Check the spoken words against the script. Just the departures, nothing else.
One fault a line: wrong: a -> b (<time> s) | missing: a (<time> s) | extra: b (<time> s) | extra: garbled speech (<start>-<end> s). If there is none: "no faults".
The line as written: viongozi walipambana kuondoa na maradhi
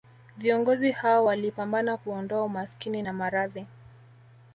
extra: hao (0.9 s)
extra: umaskini (2.4 s)